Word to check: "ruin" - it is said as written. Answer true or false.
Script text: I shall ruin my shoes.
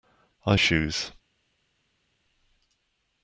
false